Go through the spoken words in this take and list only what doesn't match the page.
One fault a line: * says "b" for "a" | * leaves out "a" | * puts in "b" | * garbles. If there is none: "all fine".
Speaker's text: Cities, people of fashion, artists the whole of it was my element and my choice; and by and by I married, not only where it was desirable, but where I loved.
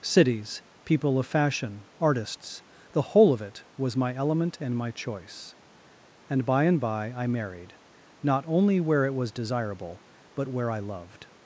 all fine